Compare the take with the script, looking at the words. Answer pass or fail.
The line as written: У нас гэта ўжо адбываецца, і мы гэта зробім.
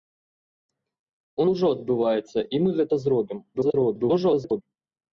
fail